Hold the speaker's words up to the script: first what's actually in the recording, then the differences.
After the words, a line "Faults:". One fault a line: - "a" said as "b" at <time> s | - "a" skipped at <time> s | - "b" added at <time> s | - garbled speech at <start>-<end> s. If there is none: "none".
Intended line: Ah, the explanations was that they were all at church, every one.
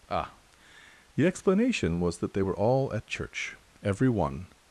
Ah, the explanation was that they were all at church, every one.
Faults:
- "explanations" said as "explanation" at 1.3 s